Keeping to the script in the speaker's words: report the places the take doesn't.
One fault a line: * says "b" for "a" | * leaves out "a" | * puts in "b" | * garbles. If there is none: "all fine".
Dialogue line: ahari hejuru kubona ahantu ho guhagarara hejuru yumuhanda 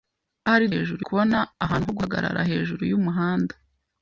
all fine